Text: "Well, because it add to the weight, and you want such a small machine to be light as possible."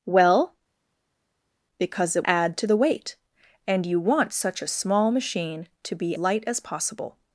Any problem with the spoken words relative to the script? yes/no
no